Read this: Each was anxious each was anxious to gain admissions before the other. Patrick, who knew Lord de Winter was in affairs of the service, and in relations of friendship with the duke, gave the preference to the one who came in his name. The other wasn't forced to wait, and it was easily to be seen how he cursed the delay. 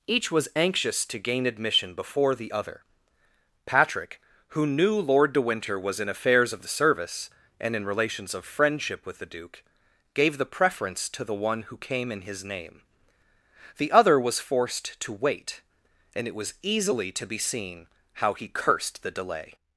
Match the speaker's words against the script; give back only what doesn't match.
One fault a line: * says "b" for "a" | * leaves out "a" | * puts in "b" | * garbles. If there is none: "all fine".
* leaves out "each was anxious"
* says "admission" for "admissions"
* says "was" for "wasn't"